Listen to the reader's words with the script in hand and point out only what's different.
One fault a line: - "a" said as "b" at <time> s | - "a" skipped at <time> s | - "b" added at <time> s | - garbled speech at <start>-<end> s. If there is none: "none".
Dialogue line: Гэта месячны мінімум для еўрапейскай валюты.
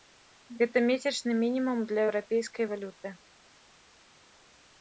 none